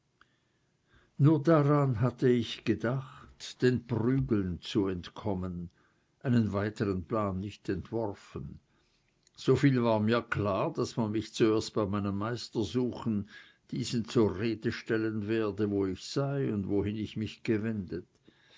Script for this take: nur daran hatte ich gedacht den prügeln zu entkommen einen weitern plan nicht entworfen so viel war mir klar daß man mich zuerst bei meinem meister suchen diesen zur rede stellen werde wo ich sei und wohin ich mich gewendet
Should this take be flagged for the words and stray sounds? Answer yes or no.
no